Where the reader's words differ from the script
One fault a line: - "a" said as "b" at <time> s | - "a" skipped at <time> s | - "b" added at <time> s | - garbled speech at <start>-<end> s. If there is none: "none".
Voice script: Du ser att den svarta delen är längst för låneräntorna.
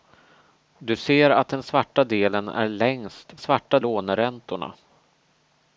- "för" said as "svarta" at 3.4 s